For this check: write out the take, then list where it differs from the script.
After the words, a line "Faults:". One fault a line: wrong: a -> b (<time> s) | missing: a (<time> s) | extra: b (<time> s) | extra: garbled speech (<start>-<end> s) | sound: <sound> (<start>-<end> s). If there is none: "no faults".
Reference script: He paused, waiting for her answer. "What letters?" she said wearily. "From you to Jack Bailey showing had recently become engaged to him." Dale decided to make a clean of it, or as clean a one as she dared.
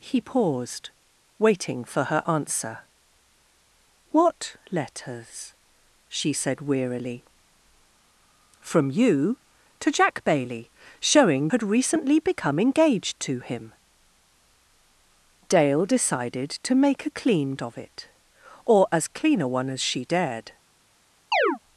He paused, waiting for her answer. "What letters?" she said wearily. "From you to Jack Bailey showing had recently become engaged to him." Dale decided to make a clean of it, or as clean a one as she dared.
Faults:
sound: chirp (21.3-21.6 s)